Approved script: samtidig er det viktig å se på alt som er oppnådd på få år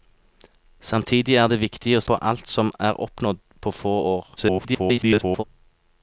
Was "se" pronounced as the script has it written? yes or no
no